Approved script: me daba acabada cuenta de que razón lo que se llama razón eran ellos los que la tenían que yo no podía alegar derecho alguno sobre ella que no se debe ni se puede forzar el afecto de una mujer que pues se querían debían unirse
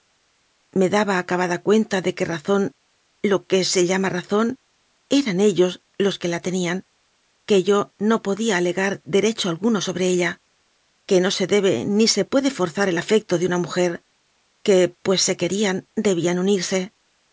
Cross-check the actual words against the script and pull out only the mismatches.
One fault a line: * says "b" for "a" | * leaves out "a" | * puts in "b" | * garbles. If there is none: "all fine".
all fine